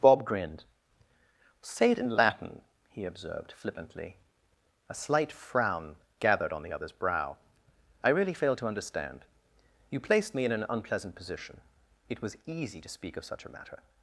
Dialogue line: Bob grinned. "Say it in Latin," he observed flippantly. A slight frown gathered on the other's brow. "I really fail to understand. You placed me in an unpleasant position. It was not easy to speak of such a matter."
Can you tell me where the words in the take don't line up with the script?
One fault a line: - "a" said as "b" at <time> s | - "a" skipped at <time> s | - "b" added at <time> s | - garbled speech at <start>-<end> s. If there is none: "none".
- "not" skipped at 12.4 s